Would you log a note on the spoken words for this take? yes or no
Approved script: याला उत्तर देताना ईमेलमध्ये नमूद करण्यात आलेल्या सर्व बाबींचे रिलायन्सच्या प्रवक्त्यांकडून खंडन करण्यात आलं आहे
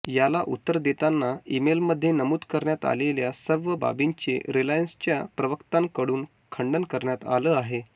no